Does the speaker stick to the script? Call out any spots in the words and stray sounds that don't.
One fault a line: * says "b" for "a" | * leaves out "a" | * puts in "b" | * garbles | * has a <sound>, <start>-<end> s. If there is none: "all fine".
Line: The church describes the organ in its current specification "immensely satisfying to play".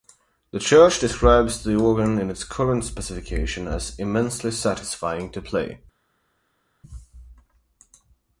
* puts in "as"